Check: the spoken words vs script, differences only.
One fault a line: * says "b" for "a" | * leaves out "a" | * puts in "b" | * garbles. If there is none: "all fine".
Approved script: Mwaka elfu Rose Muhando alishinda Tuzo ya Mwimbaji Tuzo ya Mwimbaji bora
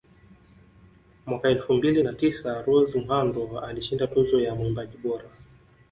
* puts in "mbili na tisa"
* leaves out "Tuzo ya Mwimbaji"